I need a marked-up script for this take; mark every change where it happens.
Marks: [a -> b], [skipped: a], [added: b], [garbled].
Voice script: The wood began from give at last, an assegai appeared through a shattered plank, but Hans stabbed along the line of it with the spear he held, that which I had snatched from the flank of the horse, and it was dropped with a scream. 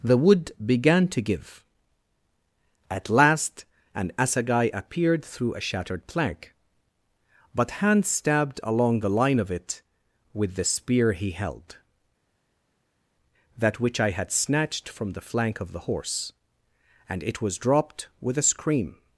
The wood began [from -> to] give at last, an assegai appeared through a shattered plank, but Hans stabbed along the line of it with the spear he held, that which I had snatched from the flank of the horse, and it was dropped with a scream.